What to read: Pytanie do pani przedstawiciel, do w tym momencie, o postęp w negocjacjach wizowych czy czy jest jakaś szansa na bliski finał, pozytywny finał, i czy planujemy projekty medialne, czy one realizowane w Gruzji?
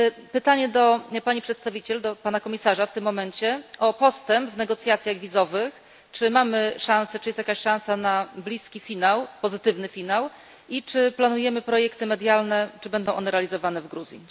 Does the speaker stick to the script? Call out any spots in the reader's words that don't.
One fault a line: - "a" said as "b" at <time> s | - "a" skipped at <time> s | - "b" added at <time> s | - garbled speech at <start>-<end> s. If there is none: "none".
- "pana komisarza" added at 2.1 s
- "mamy szansę" added at 6.3 s
- "będą" added at 12.9 s